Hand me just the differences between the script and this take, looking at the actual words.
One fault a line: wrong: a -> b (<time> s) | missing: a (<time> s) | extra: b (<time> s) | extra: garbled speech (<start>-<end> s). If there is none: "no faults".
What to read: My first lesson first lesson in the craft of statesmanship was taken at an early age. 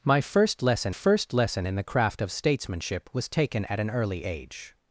no faults